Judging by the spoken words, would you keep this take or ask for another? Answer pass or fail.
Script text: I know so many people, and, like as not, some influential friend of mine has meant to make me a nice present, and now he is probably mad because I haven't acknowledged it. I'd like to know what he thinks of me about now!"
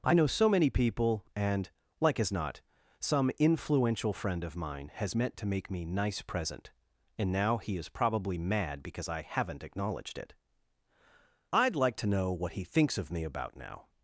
fail